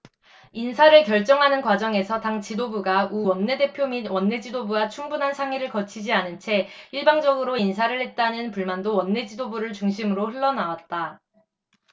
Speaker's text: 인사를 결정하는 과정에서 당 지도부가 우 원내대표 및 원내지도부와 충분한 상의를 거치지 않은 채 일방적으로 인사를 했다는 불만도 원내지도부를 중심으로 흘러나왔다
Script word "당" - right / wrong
right